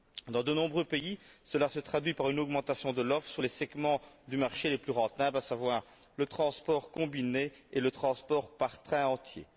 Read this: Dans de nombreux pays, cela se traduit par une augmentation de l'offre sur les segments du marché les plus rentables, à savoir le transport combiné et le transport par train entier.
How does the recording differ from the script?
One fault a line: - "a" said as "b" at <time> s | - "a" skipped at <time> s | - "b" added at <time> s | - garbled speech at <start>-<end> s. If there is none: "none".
none